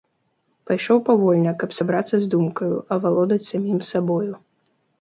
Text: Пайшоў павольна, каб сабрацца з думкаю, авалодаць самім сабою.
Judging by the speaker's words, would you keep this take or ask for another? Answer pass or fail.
pass